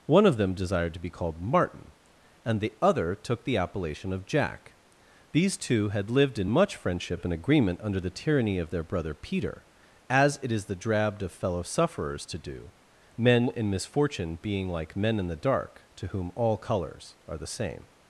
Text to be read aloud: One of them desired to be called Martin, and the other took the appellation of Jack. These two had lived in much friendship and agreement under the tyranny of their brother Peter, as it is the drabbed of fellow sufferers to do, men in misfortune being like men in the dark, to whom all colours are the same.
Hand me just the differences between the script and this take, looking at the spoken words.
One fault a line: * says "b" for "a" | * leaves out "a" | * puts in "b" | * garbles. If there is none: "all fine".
all fine